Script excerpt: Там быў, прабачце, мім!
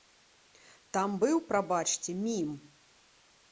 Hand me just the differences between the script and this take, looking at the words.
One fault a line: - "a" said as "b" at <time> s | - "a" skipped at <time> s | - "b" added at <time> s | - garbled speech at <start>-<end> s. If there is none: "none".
none